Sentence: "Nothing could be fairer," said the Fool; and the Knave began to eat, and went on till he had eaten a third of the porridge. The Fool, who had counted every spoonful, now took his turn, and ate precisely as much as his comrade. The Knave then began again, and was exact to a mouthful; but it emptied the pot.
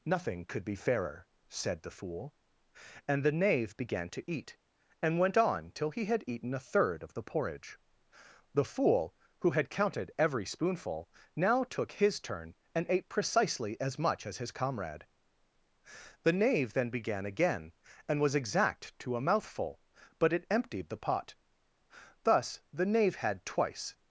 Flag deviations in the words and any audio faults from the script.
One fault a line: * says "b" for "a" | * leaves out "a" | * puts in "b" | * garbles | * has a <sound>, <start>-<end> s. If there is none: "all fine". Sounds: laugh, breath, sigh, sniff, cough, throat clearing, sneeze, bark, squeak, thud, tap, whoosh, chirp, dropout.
* puts in "Thus the Knave had twice"